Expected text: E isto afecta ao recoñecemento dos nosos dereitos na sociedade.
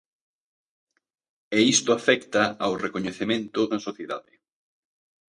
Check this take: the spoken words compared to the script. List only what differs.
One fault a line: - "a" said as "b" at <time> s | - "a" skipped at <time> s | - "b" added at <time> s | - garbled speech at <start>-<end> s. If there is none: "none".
- "dos nosos dereitos" skipped at 3.6 s